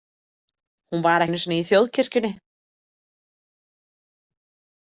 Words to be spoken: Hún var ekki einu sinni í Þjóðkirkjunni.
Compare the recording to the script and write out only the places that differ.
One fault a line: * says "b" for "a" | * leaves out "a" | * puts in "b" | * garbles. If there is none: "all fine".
* leaves out "ekki"